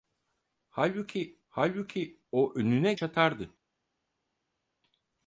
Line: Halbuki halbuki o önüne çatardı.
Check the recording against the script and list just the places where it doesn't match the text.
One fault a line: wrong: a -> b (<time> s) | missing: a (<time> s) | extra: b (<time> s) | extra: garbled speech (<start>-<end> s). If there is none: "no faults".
no faults